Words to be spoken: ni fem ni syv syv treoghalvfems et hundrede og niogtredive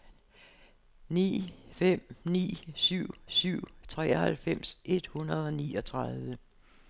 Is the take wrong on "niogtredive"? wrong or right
right